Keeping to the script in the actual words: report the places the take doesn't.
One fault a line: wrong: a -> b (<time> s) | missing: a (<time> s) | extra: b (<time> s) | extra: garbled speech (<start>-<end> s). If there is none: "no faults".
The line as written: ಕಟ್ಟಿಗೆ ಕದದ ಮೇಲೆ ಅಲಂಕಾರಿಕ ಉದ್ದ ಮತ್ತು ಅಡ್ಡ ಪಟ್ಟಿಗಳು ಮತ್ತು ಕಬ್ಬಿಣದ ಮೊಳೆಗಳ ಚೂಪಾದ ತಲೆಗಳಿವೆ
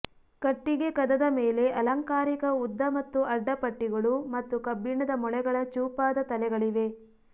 no faults